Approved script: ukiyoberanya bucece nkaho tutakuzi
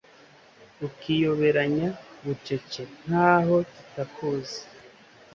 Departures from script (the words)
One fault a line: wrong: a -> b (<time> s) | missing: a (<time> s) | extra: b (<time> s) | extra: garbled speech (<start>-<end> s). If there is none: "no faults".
no faults